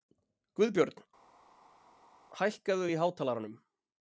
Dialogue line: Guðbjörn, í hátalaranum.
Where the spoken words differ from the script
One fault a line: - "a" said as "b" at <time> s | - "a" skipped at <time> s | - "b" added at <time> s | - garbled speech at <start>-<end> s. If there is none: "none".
- "hækkaðu" added at 2.4 s